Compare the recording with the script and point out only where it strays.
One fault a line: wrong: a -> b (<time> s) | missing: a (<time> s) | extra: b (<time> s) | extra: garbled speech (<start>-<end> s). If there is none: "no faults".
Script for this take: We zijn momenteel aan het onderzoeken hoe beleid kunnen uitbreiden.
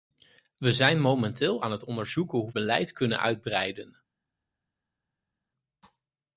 no faults